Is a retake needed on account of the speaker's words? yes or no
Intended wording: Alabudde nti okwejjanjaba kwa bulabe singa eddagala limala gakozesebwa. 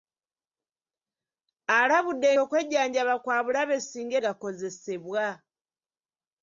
yes